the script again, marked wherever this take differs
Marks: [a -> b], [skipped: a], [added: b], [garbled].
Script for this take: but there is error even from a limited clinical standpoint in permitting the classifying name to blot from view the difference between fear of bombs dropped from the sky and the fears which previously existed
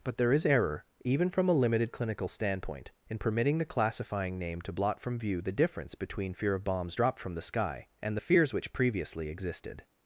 but there is error even from a limited clinical standpoint in permitting the classifying name to blot from view the difference between fear of bombs dropped from the sky and the fears which previously existed